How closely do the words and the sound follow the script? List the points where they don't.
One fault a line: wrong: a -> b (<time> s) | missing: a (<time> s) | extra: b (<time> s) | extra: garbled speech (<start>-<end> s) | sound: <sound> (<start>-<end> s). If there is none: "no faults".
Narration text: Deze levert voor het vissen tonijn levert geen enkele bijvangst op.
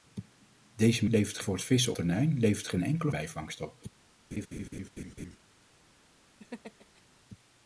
sound: laugh (4.3-5.4 s)
sound: laugh (6.4-7.0 s)